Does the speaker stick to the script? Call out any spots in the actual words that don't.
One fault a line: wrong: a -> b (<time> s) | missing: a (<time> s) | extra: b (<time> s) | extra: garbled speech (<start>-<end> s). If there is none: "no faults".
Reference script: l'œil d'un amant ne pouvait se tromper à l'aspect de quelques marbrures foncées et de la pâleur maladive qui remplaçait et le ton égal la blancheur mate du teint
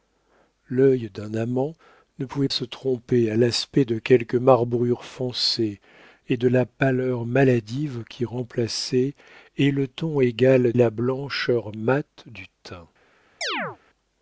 no faults